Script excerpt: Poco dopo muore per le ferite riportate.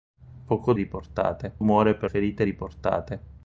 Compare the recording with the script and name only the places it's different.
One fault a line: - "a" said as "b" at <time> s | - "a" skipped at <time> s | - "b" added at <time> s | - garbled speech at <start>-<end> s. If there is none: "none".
- "dopo" said as "riportate" at 0.7 s
- "le" skipped at 2.1 s